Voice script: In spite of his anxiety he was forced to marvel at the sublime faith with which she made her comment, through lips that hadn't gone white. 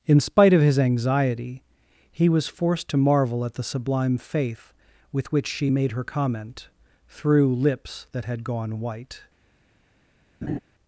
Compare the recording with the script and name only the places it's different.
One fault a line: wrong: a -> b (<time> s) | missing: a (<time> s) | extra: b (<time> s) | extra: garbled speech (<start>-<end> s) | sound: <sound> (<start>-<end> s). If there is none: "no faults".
wrong: hadn't -> had (8.2 s)
sound: laugh (10.4-10.6 s)